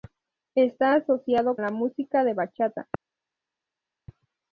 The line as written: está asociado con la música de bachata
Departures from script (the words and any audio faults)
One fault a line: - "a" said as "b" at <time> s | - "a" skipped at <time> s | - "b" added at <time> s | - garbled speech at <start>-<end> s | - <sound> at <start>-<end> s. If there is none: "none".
- "con" skipped at 1.6 s